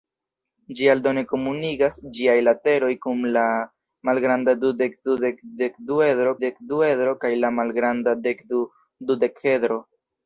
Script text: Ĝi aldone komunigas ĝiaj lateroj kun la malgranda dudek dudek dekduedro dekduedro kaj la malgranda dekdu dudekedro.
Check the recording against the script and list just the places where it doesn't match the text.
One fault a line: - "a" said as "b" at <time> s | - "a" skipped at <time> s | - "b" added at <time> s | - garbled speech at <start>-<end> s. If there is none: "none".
none